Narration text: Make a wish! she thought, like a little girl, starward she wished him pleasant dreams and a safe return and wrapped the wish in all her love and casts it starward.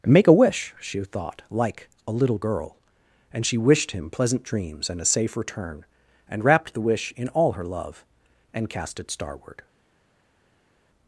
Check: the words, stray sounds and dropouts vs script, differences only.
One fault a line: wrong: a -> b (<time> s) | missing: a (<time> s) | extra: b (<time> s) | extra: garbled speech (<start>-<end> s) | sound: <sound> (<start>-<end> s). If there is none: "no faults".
wrong: starward -> and (3.3 s)
wrong: casts -> cast (8.7 s)